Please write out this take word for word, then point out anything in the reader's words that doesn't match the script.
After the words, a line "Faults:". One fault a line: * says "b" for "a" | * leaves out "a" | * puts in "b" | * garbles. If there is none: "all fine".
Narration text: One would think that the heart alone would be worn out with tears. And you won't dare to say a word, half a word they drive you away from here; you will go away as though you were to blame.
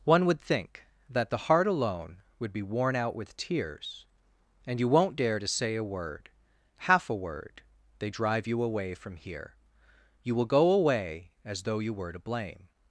One would think that the heart alone would be worn out with tears. And you won't dare to say a word, half a word they drive you away from here; you will go away as though you were to blame.
Faults:
all fine